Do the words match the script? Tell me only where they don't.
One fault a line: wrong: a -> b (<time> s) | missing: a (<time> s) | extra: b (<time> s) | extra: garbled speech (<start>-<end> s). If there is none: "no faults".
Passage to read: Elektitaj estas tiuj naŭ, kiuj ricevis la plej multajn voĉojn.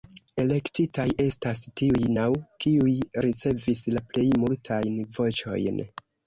no faults